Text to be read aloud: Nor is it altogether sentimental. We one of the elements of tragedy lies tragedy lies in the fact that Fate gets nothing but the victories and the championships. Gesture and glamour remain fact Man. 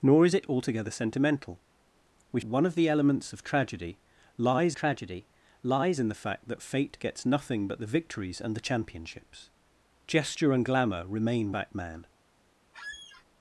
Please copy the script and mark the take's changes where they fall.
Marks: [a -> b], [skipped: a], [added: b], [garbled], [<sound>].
Nor is it altogether sentimental. We one of the elements of tragedy lies tragedy lies in the fact that Fate gets nothing but the victories and the championships. Gesture and glamour remain fact Man. [squeak]